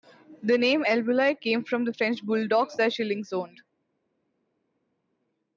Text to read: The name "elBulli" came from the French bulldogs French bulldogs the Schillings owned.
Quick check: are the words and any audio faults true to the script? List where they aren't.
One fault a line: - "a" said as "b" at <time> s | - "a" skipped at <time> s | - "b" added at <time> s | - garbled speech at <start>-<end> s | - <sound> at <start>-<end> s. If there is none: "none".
- "French bulldogs" skipped at 2.8 s